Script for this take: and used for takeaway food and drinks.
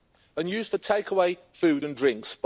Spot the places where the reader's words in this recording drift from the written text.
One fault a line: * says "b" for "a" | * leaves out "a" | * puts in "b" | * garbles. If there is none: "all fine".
all fine